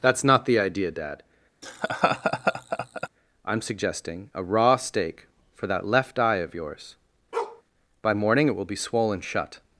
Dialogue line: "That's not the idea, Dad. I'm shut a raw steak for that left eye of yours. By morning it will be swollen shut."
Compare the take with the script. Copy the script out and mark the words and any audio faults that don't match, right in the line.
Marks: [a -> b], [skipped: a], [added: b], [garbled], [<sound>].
"That's not the idea, Dad. [laugh] I'm [shut -> suggesting] a raw steak for that left eye of yours. [bark] By morning it will be swollen shut."